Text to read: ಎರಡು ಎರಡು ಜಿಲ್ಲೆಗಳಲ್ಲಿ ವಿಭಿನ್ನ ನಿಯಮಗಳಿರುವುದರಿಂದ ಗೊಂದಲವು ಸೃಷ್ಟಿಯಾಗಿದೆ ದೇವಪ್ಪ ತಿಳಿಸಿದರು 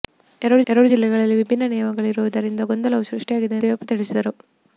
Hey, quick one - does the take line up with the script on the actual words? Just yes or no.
yes